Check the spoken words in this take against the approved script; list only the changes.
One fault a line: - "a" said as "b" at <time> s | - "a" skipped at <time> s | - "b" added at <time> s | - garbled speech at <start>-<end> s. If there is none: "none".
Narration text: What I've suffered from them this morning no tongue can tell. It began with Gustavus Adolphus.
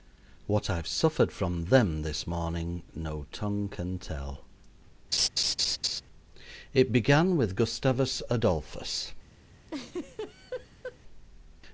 none